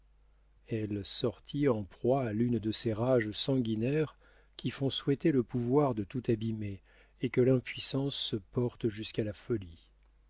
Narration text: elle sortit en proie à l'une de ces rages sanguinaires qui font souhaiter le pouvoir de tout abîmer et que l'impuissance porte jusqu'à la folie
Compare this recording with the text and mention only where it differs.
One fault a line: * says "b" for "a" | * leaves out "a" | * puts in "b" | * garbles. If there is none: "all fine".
all fine